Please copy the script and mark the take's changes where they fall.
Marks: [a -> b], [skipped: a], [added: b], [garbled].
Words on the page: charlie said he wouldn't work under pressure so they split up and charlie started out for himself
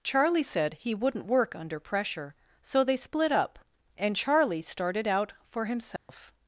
charlie said he wouldn't work under pressure so they split up and charlie started out for himself